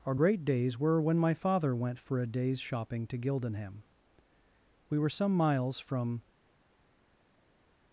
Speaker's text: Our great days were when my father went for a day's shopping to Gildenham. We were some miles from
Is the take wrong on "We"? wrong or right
right